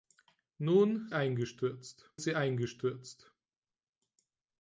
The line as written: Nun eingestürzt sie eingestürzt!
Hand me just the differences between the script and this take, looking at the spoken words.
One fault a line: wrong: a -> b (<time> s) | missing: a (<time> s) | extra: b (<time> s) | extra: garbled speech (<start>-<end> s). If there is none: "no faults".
no faults